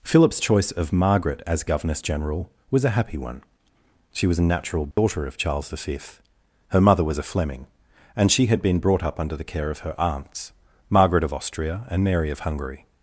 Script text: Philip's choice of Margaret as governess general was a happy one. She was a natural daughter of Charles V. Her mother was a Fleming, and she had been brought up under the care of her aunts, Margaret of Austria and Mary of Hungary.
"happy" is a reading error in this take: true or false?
false